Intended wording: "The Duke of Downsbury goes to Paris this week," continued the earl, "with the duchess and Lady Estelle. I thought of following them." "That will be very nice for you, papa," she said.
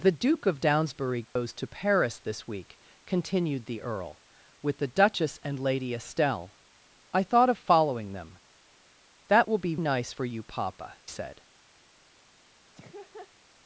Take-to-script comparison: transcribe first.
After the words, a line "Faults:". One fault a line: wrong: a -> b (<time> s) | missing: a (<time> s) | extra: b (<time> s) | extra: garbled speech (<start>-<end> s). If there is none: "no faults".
"The Duke of Downsbury goes to Paris this week," continued the earl, "with the duchess and Lady Estelle. I thought of following them." "That will be nice for you, papa," said.
Faults:
missing: very (9.8 s)
missing: she (11.0 s)